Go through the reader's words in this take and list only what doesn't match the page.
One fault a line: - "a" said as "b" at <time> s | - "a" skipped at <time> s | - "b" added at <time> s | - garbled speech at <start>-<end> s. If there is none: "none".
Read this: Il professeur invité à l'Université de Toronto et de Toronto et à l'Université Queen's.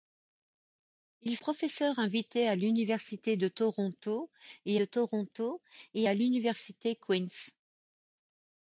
none